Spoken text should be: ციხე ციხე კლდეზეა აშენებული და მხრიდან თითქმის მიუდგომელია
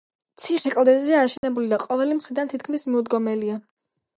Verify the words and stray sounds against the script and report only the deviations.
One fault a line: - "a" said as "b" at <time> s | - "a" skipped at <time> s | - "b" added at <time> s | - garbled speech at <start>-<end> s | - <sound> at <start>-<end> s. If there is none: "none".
- "ციხე" skipped at 0.7 s
- dropout at 1.4-1.4 s
- "ყოველი" added at 1.8 s